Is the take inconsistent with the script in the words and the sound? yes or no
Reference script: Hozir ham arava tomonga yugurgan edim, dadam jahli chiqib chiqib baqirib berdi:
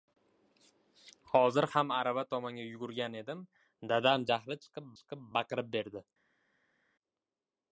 no